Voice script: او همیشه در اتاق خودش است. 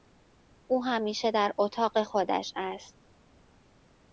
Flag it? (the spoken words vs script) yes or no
no